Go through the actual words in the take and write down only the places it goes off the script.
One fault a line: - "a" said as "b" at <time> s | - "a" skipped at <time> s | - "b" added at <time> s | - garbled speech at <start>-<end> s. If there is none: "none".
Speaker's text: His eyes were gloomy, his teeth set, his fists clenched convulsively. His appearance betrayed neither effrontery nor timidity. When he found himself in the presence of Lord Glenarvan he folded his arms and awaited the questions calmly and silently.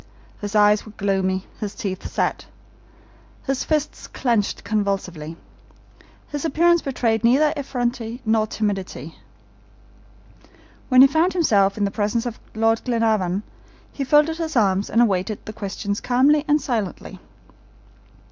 none